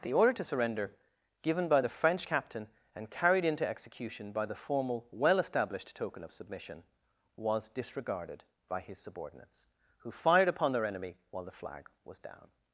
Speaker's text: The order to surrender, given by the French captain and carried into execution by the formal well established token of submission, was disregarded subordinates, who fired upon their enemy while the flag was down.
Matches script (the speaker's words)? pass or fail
fail